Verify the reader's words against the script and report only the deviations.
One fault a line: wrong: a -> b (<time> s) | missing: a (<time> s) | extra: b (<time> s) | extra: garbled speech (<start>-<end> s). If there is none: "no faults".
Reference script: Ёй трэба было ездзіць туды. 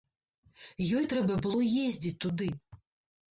no faults